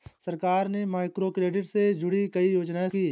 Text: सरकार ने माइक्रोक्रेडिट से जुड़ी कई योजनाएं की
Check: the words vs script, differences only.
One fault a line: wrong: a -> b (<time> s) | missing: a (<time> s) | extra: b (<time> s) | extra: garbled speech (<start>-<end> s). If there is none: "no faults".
no faults